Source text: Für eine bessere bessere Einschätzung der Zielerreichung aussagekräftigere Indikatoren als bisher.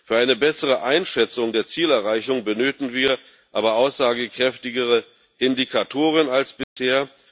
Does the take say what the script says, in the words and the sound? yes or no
no